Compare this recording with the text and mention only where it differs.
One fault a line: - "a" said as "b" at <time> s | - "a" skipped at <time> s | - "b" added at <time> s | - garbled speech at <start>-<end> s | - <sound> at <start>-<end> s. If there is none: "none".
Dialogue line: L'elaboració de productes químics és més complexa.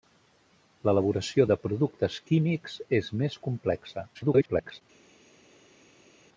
- garbled speech at 4.1-4.8 s